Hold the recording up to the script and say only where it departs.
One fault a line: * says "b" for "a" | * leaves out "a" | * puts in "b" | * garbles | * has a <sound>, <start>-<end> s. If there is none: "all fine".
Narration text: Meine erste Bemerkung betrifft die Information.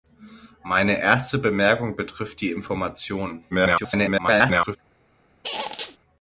* garbles
* has a squeak, 5.4-6.0 s